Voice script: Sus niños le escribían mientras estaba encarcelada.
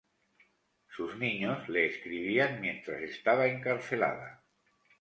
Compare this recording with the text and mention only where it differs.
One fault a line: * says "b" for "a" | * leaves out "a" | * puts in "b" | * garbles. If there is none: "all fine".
all fine